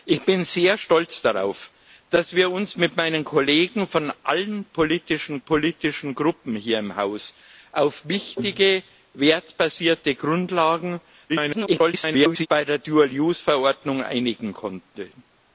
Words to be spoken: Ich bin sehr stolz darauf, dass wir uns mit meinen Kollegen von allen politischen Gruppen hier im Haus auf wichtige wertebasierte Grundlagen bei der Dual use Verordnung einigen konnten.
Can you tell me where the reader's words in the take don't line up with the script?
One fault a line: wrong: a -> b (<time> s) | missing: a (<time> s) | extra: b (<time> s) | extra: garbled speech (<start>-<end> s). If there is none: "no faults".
extra: politischen (5.4 s)
extra: garbled speech (11.3-12.5 s)